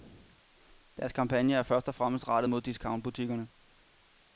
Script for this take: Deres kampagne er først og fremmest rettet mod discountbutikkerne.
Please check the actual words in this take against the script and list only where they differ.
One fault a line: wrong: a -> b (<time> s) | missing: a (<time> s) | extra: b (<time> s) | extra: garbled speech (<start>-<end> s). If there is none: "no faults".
no faults